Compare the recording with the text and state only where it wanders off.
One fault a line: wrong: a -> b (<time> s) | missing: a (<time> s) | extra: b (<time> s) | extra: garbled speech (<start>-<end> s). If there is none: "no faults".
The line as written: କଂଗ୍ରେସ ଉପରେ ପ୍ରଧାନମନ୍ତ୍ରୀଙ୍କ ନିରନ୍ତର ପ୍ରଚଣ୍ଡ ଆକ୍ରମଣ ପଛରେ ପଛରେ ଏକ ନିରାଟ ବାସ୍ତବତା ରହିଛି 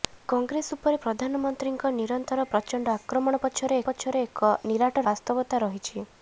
no faults